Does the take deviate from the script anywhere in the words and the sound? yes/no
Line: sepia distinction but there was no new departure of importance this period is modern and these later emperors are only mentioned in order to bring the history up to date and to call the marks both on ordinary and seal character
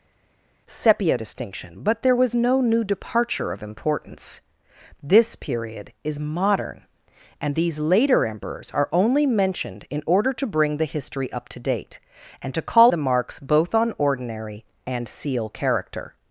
no